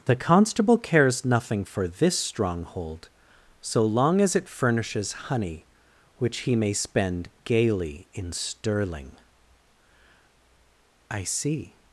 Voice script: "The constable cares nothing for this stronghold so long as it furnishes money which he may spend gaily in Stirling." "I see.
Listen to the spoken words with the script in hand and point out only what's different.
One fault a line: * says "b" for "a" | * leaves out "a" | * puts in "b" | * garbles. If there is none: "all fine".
* says "honey" for "money"